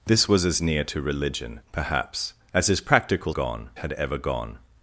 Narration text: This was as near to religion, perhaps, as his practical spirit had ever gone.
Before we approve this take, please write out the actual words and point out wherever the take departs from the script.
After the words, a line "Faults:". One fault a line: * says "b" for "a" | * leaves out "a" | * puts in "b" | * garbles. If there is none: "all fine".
This was as near to religion, perhaps, as his practical gone had ever gone.
Faults:
* says "gone" for "spirit"